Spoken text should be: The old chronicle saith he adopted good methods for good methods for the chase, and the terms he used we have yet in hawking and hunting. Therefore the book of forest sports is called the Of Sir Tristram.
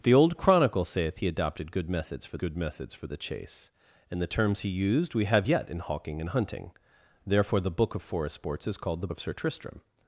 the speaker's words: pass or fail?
pass